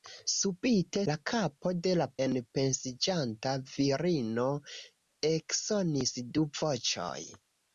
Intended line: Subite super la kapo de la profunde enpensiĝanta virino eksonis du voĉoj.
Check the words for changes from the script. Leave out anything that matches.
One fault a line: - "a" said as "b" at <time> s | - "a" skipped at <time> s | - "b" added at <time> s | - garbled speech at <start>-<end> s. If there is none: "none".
- "super" skipped at 1.0 s
- "profunde" skipped at 2.1 s